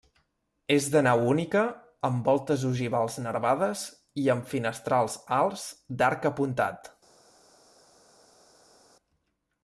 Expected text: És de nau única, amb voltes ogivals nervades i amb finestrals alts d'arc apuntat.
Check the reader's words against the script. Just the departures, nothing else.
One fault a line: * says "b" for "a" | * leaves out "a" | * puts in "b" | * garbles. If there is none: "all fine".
all fine